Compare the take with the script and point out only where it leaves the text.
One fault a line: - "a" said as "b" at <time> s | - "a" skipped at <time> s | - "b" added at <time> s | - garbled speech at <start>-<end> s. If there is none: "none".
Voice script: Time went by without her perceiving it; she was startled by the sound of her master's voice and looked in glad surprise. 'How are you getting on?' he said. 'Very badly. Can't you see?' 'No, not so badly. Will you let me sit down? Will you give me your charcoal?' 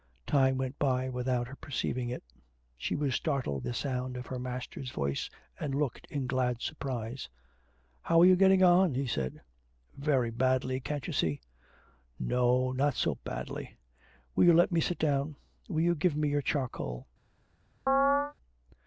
- "by" skipped at 3.7 s